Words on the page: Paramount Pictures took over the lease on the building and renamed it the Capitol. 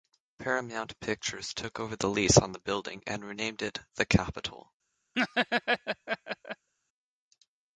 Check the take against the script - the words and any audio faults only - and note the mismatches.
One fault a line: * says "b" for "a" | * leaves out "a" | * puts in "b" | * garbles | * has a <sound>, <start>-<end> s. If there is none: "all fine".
* has a laugh, 5.1-6.7 s